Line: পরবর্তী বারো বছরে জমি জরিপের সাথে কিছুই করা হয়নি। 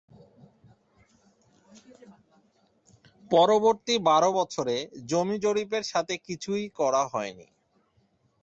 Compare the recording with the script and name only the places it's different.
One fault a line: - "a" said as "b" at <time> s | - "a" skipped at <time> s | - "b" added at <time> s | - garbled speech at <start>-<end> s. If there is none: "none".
none